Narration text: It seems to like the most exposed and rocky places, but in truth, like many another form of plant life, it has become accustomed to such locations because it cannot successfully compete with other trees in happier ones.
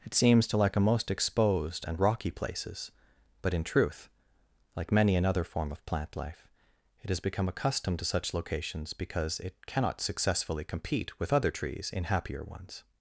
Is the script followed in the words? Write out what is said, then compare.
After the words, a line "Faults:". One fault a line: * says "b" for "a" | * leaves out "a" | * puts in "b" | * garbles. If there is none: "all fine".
It seems to like a most exposed and rocky places, but in truth, like many another form of plant life, it has become accustomed to such locations because it cannot successfully compete with other trees in happier ones.
Faults:
* says "a" for "the"